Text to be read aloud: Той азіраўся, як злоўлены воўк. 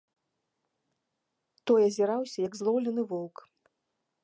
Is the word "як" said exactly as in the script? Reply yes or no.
yes